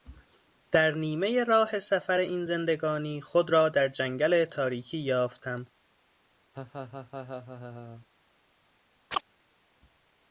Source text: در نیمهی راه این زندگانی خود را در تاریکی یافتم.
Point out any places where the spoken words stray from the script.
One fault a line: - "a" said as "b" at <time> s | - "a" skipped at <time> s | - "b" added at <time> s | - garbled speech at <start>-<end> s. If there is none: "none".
- "سفر" added at 1.8 s
- "جنگل" added at 3.9 s